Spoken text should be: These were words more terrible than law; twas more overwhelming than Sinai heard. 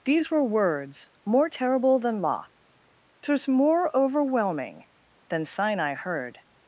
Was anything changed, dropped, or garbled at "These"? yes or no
no